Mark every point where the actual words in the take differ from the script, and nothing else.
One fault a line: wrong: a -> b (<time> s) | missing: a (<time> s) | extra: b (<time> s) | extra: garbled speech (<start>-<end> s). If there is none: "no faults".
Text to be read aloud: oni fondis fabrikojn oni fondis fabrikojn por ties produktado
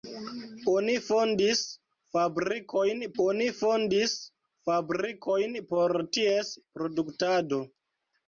no faults